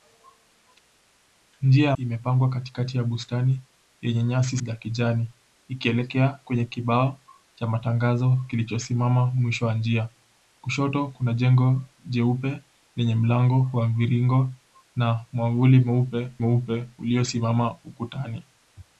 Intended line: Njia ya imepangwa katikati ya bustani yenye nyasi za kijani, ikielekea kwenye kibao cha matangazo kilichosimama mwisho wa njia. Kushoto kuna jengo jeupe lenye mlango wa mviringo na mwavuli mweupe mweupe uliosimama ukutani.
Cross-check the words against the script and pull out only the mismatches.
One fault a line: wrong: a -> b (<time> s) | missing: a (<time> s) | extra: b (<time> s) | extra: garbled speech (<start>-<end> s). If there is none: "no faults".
no faults